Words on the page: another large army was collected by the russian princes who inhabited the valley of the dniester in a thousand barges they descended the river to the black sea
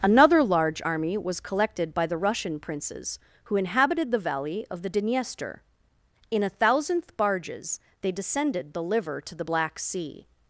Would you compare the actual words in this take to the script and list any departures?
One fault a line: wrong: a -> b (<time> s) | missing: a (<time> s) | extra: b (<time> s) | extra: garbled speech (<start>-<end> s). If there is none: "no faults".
wrong: thousand -> thousandth (6.5 s)
wrong: river -> liver (8.8 s)